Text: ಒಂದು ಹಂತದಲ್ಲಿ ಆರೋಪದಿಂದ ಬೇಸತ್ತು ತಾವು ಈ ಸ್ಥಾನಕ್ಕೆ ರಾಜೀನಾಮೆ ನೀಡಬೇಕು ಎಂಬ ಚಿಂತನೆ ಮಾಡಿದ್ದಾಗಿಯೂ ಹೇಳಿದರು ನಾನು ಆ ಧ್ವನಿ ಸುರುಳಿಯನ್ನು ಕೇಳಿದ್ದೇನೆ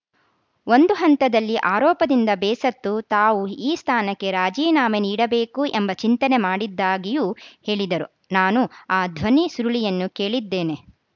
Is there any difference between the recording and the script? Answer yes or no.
no